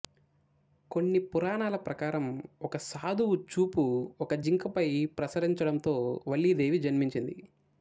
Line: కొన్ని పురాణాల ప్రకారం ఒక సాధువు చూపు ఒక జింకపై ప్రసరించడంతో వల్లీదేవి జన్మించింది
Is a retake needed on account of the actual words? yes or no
no